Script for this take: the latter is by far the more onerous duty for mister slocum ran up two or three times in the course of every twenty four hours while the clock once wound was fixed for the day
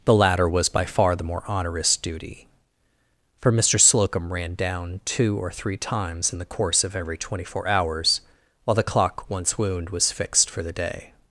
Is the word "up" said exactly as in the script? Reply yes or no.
no